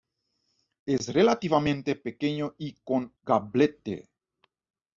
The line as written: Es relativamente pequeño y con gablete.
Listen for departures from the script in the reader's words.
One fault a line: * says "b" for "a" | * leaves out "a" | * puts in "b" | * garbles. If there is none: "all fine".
all fine